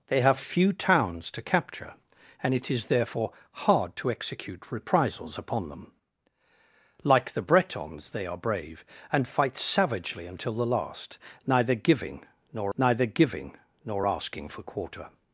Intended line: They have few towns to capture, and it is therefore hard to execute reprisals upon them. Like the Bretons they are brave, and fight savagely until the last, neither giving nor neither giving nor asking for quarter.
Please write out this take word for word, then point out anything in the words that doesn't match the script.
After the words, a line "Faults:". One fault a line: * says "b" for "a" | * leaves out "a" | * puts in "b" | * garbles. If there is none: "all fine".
They have few towns to capture, and it is therefore hard to execute reprisals upon them. Like the Bretons they are brave, and fight savagely until the last, neither giving nor neither giving nor asking for quarter.
Faults:
all fine